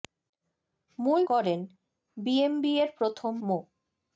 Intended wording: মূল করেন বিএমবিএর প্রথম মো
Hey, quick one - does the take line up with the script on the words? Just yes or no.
yes